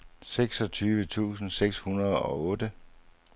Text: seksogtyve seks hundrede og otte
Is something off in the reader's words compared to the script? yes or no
yes